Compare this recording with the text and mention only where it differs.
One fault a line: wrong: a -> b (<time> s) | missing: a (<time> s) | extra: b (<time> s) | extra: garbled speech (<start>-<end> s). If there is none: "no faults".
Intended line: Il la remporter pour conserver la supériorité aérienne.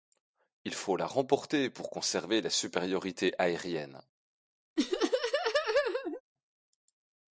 extra: faut (0.7 s)